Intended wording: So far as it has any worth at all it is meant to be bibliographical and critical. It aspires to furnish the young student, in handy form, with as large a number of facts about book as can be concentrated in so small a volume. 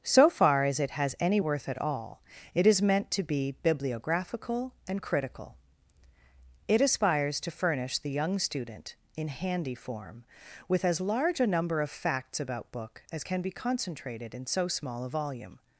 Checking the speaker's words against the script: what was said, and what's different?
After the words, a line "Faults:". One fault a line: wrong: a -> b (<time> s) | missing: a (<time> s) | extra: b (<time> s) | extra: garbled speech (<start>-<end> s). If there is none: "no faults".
So far as it has any worth at all it is meant to be bibliographical and critical. It aspires to furnish the young student, in handy form, with as large a number of facts about book as can be concentrated in so small a volume.
Faults:
no faults